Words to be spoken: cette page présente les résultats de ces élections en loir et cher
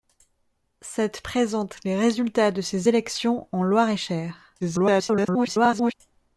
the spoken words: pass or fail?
fail